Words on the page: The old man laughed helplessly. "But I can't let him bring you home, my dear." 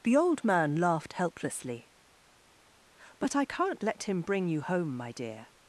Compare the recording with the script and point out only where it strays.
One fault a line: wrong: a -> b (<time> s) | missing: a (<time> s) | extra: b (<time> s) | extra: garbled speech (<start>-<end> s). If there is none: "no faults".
no faults